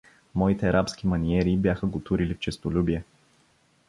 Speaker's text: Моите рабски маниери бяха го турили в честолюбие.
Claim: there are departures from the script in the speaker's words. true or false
false